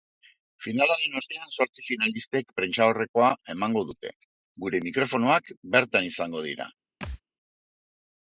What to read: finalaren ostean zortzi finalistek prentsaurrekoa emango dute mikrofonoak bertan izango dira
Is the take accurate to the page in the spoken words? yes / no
no